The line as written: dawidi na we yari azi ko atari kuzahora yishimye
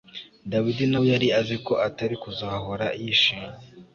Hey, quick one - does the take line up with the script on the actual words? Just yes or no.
yes